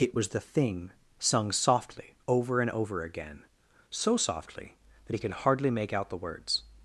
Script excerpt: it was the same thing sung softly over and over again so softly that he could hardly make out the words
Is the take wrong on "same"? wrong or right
wrong